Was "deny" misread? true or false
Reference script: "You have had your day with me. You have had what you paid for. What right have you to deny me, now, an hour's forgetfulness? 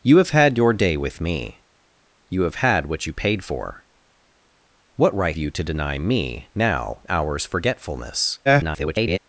false